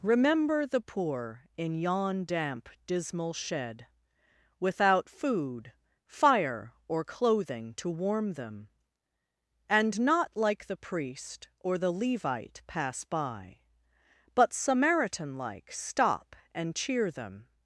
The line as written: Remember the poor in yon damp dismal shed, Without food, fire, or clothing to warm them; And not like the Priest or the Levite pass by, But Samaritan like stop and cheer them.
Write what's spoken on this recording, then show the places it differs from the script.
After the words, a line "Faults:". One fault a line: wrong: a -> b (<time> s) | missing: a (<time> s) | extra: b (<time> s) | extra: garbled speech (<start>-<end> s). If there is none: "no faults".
Remember the poor in yon damp dismal shed, Without food, fire, or clothing to warm them; And not like the Priest or the Levite pass by, But Samaritan like stop and cheer them.
Faults:
no faults